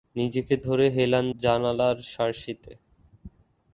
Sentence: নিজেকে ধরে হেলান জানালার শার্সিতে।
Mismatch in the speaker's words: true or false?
false